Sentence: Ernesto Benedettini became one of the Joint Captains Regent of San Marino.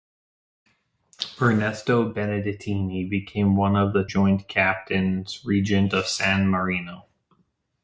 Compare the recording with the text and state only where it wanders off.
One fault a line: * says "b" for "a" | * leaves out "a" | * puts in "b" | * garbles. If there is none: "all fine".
all fine